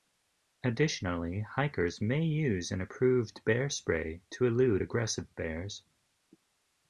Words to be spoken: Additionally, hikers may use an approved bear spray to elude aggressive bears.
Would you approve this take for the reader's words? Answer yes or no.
yes